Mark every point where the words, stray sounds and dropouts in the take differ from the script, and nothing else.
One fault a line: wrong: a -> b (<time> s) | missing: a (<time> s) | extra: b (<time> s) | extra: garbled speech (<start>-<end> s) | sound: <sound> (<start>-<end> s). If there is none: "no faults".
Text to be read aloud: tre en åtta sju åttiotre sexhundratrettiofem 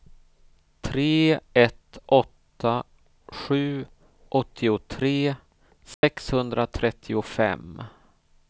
wrong: en -> ett (1.5 s)
sound: dropout (5.9-6.0 s)